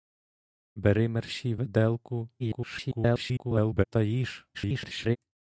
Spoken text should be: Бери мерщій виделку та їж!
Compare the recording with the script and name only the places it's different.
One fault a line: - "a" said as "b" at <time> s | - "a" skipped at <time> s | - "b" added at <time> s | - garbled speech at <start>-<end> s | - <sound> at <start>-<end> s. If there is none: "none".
- garbled speech at 2.4-3.8 s
- garbled speech at 4.5-5.2 s